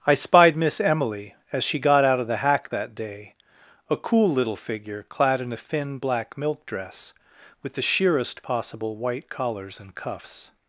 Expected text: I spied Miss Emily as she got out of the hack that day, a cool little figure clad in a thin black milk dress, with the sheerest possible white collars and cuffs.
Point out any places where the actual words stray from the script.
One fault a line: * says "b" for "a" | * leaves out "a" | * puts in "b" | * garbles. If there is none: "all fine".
all fine